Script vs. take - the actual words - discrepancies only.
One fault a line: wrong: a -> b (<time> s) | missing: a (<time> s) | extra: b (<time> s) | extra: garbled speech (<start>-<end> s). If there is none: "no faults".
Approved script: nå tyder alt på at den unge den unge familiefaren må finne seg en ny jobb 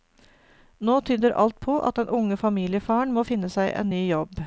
missing: den unge (2.4 s)